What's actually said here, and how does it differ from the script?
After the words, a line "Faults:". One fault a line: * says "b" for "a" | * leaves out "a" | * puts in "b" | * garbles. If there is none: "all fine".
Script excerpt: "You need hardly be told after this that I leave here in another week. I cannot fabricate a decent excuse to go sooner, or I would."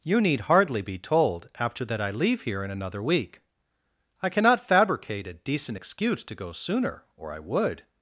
"You need hardly be told after that I leave here in another week. I cannot fabricate a decent excuse to go sooner, or I would."
Faults:
* leaves out "this"